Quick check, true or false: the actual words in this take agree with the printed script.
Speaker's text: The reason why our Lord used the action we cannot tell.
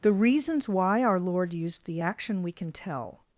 false